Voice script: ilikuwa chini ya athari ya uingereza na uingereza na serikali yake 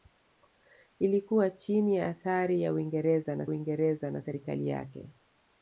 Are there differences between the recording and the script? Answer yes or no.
no